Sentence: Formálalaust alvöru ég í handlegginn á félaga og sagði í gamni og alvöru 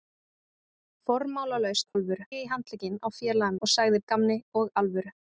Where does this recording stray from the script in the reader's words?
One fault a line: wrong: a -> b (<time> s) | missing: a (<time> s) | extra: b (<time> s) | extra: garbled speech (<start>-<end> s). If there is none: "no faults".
no faults